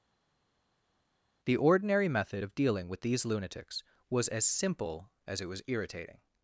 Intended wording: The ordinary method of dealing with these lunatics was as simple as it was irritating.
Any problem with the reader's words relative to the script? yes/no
no